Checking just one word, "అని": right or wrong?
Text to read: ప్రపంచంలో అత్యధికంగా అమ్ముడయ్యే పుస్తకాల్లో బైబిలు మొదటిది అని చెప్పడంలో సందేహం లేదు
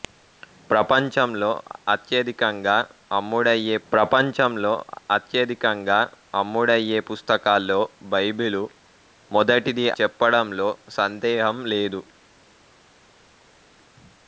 wrong